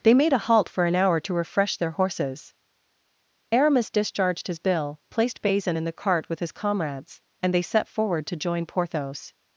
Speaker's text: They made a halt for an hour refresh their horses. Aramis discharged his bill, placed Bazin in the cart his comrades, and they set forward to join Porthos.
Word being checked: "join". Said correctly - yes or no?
yes